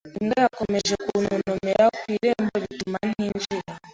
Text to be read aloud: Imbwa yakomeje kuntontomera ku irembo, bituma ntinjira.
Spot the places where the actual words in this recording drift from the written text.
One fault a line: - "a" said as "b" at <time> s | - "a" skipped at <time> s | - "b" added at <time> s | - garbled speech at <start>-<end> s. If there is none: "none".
none